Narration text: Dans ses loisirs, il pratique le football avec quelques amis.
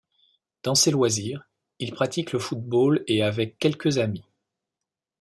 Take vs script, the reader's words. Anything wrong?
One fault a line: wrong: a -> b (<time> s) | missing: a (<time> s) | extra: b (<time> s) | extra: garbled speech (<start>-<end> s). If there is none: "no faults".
extra: et (3.0 s)